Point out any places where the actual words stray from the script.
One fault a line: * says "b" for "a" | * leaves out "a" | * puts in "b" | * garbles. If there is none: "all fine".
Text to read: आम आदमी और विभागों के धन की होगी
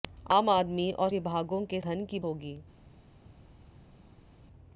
all fine